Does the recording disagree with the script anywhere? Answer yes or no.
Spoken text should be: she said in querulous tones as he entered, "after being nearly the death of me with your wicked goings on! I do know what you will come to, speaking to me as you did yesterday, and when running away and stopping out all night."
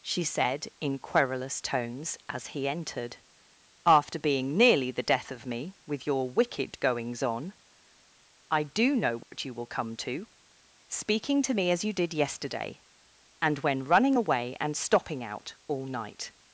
no